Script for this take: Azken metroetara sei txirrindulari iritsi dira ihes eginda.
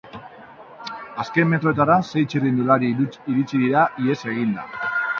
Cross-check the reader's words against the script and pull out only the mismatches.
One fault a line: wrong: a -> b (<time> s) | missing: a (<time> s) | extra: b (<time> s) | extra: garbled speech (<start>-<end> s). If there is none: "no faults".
no faults